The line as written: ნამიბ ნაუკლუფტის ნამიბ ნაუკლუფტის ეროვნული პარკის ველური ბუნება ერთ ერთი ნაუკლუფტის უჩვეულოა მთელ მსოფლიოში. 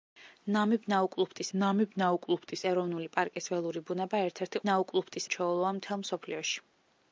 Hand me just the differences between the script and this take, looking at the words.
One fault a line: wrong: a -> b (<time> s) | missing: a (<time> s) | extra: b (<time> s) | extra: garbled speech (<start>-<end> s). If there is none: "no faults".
no faults